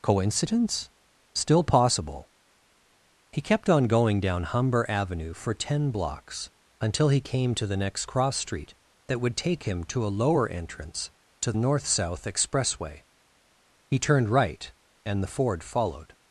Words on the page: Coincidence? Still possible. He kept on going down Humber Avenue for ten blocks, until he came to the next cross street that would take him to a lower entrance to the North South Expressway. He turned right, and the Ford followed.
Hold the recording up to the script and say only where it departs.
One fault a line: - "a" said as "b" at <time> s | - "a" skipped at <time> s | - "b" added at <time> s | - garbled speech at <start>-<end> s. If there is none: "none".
- "the" skipped at 11.5 s